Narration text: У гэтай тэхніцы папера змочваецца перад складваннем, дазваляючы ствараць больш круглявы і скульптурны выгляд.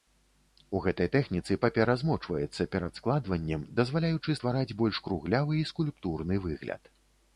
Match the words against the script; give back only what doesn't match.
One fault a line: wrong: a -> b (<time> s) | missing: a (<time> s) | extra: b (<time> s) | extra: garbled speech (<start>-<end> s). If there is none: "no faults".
no faults